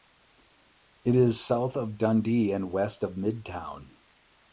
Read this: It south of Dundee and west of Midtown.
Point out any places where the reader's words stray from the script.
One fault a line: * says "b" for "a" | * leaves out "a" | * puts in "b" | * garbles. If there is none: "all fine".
* puts in "is"